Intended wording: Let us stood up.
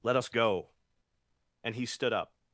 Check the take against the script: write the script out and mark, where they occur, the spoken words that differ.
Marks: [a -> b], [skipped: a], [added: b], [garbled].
Let us [added: go And he] stood up.